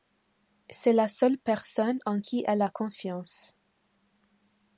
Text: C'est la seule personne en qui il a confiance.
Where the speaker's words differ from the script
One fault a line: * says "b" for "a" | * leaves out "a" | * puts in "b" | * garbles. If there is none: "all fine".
* says "elle" for "il"